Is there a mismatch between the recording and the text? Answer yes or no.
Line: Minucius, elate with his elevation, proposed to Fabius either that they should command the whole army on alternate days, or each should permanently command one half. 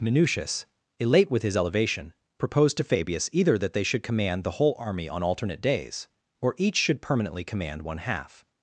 no